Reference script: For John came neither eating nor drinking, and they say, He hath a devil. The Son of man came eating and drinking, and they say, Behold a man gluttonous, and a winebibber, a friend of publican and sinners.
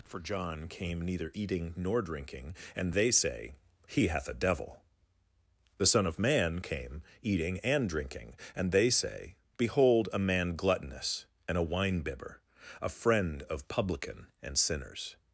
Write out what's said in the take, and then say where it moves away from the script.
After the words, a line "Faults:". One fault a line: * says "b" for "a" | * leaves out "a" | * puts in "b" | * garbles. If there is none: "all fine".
For John came neither eating nor drinking, and they say, He hath a devil. The Son of man came eating and drinking, and they say, Behold a man gluttonous, and a winebibber, a friend of publican and sinners.
Faults:
all fine